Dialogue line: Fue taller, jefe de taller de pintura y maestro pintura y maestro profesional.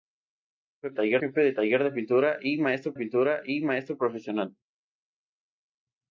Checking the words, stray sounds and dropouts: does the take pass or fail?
pass